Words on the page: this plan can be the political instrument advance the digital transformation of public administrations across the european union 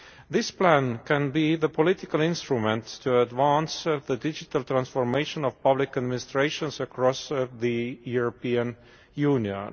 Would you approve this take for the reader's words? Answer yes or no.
no